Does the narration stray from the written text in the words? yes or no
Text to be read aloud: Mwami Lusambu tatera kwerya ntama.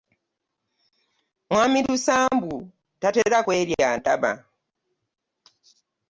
no